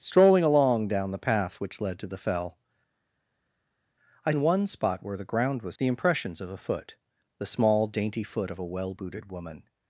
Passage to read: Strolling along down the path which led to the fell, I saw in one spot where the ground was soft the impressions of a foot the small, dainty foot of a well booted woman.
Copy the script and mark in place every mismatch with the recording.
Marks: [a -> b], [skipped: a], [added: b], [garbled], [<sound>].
Strolling along down the path which led to the fell, I [skipped: saw] in one spot where the ground was [skipped: soft] the impressions of a foot the small, dainty foot of a well booted woman.